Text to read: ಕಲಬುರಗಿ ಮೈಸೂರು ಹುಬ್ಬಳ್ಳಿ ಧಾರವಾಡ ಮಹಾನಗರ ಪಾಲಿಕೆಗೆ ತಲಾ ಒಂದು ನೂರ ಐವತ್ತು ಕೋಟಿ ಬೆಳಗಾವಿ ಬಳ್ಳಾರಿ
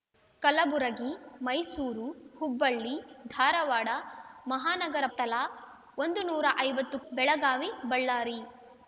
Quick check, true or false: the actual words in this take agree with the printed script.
false